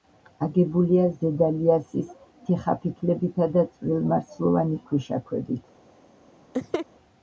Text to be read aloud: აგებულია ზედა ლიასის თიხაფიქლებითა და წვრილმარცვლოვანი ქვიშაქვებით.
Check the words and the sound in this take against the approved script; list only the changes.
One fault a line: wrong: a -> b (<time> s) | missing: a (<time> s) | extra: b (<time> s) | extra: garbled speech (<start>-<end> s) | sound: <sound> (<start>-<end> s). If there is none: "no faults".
sound: laugh (6.5-6.9 s)